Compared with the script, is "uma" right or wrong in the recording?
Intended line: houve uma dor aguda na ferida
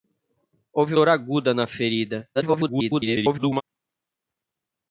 wrong